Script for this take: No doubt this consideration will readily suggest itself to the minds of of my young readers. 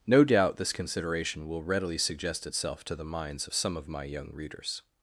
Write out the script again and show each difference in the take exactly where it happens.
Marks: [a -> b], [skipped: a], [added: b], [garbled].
No doubt this consideration will readily suggest itself to the minds of [added: some] of my young readers.